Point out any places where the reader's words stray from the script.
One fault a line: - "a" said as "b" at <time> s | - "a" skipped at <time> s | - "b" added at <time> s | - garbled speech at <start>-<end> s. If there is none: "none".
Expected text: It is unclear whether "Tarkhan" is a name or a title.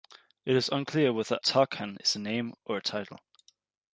none